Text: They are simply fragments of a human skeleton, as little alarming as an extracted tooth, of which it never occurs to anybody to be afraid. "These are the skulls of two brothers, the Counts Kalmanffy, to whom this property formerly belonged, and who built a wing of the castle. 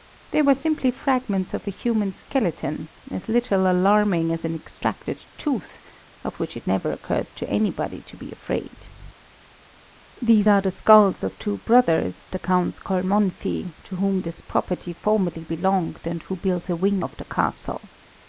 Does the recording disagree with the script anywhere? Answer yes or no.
yes